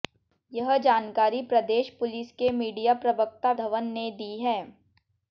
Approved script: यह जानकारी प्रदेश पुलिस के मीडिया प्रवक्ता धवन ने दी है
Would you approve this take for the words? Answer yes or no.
yes